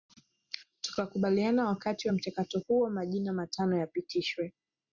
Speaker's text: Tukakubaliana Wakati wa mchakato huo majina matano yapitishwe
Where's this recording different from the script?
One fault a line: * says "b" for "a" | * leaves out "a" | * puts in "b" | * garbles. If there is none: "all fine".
all fine